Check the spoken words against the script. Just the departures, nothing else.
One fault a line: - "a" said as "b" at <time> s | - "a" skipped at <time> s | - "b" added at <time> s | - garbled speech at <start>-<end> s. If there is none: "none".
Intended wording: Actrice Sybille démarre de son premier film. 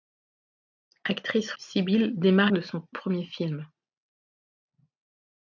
none